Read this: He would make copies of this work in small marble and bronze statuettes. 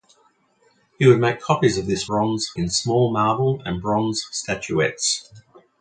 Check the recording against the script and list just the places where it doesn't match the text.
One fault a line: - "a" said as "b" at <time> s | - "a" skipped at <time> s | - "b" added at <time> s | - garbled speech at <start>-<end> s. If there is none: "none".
- "work" said as "bronze" at 2.0 s